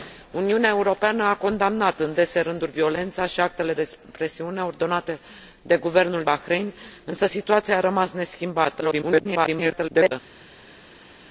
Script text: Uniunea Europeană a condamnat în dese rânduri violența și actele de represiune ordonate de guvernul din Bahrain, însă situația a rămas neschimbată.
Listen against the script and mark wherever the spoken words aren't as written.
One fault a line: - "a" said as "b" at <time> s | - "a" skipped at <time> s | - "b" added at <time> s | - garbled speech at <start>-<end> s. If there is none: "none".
- "de" skipped at 3.7 s
- "din" skipped at 6.2 s
- garbled speech at 8.8-10.1 s